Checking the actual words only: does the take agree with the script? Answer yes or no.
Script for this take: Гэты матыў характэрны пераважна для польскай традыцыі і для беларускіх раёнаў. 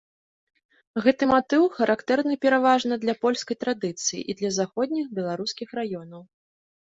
no